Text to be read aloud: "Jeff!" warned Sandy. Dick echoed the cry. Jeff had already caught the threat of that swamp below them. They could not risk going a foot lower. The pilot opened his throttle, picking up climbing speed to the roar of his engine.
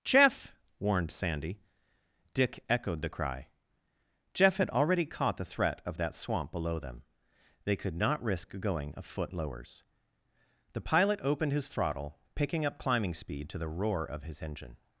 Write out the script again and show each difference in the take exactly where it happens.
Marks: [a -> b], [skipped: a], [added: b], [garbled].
"Jeff!" warned Sandy. Dick echoed the cry. Jeff had already caught the threat of that swamp below them. They could not risk going a foot [lower. -> lowers] The pilot opened his throttle, picking up climbing speed to the roar of his engine.